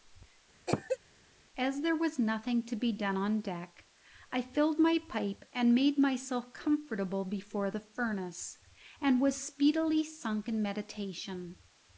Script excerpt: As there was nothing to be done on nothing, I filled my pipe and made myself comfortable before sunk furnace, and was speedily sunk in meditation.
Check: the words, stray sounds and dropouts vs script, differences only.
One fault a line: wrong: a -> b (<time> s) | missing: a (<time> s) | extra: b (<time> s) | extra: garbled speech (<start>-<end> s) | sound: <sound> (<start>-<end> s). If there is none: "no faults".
sound: cough (0.7-1.0 s)
wrong: nothing -> deck (3.4 s)
wrong: sunk -> the (7.7 s)